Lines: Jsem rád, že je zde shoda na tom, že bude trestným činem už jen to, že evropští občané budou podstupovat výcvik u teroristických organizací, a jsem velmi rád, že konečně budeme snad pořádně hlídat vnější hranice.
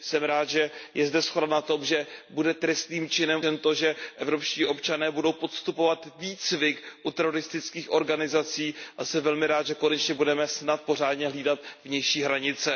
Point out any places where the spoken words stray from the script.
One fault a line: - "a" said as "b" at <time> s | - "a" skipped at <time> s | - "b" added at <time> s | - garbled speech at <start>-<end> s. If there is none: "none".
- "už" skipped at 3.4 s